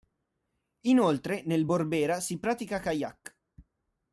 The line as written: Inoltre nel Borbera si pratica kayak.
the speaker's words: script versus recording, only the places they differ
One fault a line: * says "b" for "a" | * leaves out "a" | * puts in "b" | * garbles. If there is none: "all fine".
all fine